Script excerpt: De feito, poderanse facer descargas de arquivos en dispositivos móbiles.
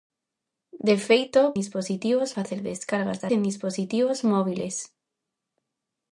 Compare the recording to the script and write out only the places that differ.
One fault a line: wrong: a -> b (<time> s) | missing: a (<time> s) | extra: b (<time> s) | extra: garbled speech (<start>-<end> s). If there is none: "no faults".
wrong: poderanse -> dispositivos (1.5 s)
missing: arquivos (3.3 s)